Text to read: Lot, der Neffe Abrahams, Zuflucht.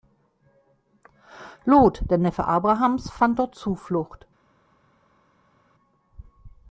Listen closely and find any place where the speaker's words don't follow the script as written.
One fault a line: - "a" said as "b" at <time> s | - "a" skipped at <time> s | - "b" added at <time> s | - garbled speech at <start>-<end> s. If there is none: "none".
- "fand dort" added at 3.1 s